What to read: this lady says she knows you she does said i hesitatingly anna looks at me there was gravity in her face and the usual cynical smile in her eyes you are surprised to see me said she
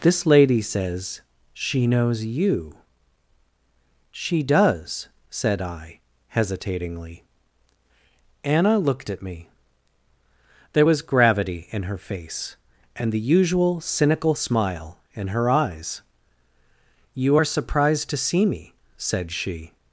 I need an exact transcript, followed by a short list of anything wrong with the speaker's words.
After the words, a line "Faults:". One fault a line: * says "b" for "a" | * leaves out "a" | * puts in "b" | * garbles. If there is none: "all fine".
this lady says she knows you she does said i hesitatingly anna looked at me there was gravity in her face and the usual cynical smile in her eyes you are surprised to see me said she
Faults:
* says "looked" for "looks"